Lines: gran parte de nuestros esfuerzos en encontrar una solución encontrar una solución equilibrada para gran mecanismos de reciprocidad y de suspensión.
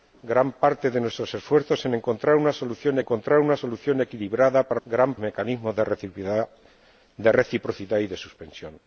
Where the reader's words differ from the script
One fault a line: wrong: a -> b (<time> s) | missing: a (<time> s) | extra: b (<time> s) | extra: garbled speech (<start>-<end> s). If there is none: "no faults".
no faults